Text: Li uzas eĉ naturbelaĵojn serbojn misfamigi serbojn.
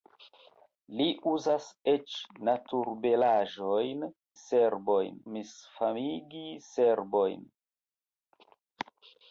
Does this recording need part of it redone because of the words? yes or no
no